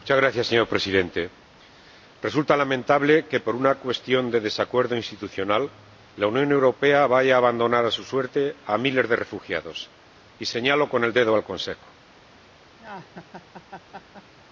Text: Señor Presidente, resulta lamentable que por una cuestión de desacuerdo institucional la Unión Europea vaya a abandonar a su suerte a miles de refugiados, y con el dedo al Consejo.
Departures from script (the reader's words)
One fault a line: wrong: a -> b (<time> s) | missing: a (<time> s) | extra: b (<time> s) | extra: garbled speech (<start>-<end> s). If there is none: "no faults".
extra: señalo (10.4 s)